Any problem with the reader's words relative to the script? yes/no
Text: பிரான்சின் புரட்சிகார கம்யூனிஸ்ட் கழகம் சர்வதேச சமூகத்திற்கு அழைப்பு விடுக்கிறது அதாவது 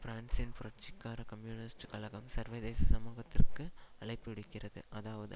no